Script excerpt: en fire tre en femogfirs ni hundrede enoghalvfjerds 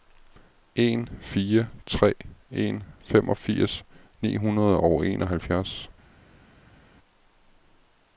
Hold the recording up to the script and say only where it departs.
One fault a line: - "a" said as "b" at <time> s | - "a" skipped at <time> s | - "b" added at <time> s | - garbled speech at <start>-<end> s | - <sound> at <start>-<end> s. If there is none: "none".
- "og" added at 4.7 s